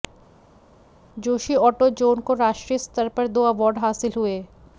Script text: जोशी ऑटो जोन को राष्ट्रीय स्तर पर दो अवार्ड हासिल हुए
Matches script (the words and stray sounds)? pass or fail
pass